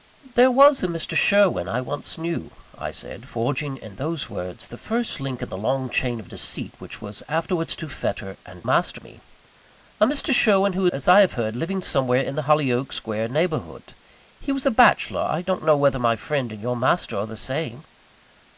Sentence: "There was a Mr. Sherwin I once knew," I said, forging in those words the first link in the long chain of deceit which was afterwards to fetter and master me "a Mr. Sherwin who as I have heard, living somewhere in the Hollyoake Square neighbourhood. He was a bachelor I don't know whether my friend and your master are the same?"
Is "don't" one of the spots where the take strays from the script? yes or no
no